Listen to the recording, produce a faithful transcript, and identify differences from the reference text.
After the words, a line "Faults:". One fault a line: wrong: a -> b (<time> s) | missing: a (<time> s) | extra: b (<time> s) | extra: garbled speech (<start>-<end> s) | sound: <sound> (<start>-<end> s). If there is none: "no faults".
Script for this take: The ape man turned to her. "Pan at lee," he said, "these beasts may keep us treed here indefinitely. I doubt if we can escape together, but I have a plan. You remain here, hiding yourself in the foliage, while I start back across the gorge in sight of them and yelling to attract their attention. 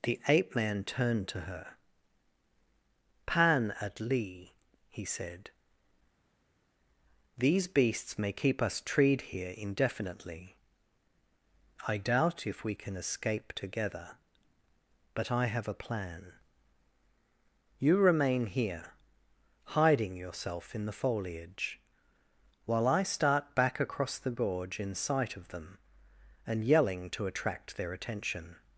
The ape man turned to her. "Pan at lee," he said, "these beasts may keep us treed here indefinitely. I doubt if we can escape together, but I have a plan. You remain here, hiding yourself in the foliage, while I start back across the gorge in sight of them and yelling to attract their attention.
Faults:
no faults